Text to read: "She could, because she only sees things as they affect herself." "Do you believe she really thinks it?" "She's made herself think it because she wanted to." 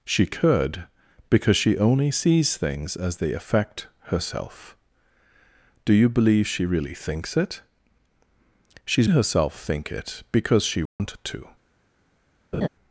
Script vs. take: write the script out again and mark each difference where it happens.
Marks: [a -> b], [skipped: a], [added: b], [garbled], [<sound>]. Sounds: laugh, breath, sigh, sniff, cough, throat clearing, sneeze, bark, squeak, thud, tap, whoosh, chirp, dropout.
"She could, because she only sees things as they affect herself." "Do you believe she really thinks it?" "She's [skipped: made] herself think it because she wanted [dropout] to." [laugh]